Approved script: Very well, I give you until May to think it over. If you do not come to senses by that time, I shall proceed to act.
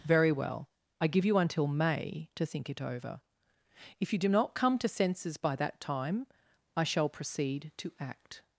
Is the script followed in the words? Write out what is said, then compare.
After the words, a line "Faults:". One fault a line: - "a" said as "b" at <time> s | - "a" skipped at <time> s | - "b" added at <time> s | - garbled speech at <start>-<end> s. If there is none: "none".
Very well, I give you until May to think it over. If you do not come to senses by that time, I shall proceed to act.
Faults:
none